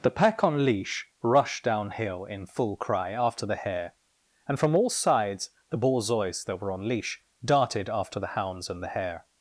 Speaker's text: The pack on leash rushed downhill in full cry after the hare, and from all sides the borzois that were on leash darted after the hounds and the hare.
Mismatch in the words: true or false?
false